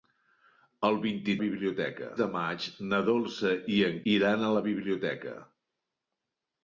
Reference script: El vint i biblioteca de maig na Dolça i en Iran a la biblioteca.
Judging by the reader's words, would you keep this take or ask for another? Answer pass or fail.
pass